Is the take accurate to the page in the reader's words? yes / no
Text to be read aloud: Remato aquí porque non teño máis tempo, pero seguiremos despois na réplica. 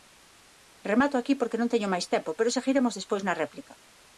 yes